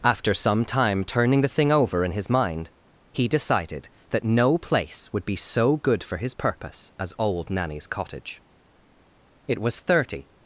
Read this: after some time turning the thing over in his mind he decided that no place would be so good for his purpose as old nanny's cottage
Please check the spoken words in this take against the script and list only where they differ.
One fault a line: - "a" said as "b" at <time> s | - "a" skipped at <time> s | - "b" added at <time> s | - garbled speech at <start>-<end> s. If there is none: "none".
- "it was thirty" added at 9.5 s